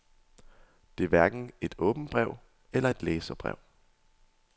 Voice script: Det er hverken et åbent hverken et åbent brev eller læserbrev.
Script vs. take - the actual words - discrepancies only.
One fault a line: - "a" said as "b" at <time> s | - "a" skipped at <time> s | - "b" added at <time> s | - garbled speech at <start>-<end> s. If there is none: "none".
- "hverken et åbent" skipped at 2.1 s
- "et" added at 2.9 s